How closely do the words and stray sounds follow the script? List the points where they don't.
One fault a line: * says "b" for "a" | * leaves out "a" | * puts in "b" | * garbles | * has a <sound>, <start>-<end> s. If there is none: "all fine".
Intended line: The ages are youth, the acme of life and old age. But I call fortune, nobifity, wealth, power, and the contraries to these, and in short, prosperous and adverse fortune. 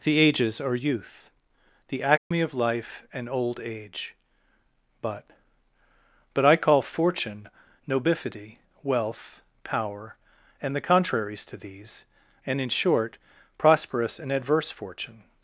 * has a dropout, 2.2-2.3 s
* puts in "But"